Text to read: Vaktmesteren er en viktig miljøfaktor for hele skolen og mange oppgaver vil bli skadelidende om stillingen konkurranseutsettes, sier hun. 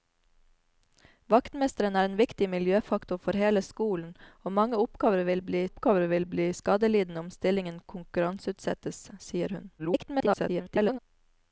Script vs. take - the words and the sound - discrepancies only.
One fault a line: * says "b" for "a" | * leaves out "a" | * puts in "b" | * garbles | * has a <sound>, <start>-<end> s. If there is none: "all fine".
* puts in "oppgaver vil bli"
* garbles